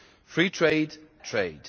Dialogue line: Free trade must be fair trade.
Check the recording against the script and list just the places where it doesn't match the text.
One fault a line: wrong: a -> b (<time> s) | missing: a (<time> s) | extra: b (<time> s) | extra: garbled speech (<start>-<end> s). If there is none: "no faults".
missing: must be fair (0.9 s)